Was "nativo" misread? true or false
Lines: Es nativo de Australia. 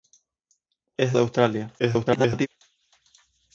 true